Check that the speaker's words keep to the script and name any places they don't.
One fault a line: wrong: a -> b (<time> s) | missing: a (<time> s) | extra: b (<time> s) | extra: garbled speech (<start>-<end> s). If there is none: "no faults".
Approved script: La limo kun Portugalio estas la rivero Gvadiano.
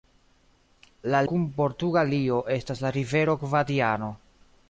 missing: limo (1.2 s)